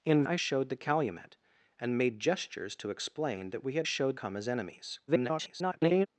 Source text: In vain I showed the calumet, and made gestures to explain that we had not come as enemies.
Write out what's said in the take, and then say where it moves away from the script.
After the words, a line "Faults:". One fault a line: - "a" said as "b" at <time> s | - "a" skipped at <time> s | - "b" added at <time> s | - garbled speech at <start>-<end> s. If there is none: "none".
In I showed the calumet, and made gestures to explain that we had showed come as enemies. [garbled]
Faults:
- "vain" skipped at 0.2 s
- "not" said as "showed" at 3.8 s
- garbled speech at 5.1-6.1 s